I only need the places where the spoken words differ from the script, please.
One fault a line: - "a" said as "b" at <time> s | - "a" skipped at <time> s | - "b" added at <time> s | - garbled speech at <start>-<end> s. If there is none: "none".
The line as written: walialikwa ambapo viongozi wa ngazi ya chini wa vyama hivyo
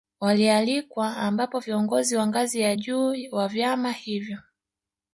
- "chini" said as "juu" at 2.7 s